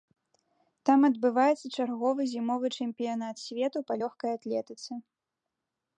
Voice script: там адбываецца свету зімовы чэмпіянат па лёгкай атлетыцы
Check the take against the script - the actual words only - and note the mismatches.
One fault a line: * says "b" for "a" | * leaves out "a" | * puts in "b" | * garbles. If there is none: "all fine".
* says "чарговы" for "свету"
* puts in "свету"